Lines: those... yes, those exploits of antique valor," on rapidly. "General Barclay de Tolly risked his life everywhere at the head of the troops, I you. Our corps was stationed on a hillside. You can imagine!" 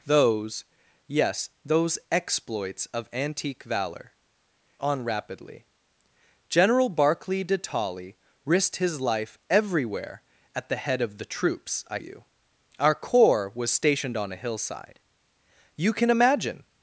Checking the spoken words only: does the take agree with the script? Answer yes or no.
yes